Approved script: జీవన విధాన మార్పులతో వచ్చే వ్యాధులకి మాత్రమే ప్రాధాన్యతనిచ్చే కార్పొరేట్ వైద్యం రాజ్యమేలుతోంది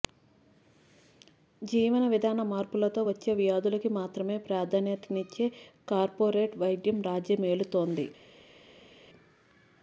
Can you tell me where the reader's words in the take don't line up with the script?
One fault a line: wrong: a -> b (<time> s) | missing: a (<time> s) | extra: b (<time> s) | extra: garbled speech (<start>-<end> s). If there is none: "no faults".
no faults